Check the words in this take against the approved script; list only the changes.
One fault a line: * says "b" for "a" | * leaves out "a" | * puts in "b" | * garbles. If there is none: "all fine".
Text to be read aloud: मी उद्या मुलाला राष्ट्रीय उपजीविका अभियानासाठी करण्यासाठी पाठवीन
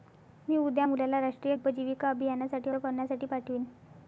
all fine